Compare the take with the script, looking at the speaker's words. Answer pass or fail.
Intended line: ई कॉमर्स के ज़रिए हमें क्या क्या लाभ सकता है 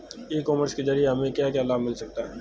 fail